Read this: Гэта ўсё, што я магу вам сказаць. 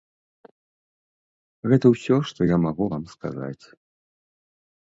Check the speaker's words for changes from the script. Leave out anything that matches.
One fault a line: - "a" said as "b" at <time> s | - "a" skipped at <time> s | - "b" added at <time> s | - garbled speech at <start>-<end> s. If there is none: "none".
none